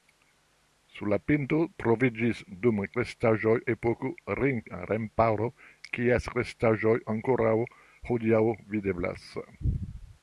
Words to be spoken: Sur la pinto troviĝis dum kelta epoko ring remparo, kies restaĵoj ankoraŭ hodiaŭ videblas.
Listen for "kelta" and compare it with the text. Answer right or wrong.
wrong